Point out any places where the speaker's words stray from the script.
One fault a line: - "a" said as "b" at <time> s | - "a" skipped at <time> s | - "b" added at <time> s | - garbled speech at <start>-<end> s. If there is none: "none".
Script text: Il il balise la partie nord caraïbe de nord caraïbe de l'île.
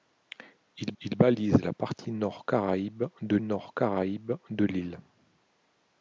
none